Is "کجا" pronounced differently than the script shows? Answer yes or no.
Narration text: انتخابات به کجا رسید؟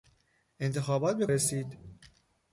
yes